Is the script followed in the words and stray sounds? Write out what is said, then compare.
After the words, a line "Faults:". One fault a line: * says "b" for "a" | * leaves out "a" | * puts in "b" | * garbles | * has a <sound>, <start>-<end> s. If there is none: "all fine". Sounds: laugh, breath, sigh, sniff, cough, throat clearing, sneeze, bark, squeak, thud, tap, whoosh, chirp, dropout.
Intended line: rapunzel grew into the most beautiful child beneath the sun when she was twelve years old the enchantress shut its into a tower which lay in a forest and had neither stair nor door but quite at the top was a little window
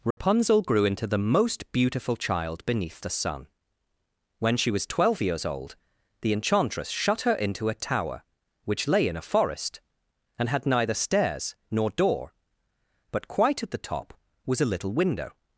rapunzel grew into the most beautiful child beneath the sun when she was twelve years old the enchantress shut her into a tower which lay in a forest and had neither stairs nor door but quite at the top was a little window
Faults:
* has a dropout, 0.1-0.2 s
* says "her" for "its"
* says "stairs" for "stair"